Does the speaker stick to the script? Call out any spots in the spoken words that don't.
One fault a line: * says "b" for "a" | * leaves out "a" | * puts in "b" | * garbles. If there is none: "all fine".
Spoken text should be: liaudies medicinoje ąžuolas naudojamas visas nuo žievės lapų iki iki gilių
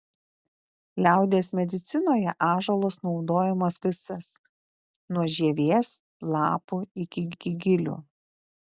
all fine